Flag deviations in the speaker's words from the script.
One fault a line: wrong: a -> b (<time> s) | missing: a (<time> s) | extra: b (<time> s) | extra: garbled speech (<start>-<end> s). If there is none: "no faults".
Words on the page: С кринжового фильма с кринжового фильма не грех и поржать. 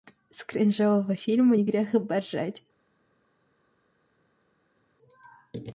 missing: с кринжового фильма (1.6 s)